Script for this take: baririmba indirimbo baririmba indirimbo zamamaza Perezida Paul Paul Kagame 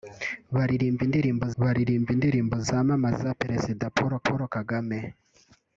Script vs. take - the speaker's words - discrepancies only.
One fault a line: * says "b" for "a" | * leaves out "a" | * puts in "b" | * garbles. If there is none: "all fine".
all fine